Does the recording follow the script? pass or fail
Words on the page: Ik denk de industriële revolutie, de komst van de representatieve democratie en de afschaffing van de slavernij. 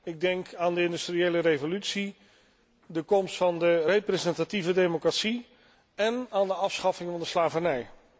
fail